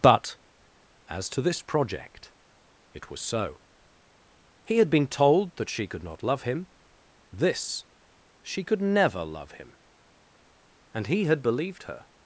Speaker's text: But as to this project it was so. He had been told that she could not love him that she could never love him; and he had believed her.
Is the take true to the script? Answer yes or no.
no